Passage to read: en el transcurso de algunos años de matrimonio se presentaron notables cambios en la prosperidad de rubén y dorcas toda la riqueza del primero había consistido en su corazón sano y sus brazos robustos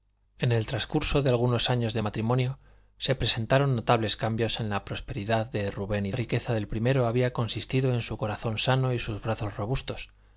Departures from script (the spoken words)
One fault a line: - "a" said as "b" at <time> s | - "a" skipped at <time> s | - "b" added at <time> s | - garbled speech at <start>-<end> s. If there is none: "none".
- "dorcas toda la" skipped at 6.1 s